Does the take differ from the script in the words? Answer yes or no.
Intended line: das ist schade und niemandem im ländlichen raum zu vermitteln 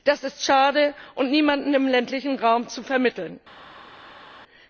no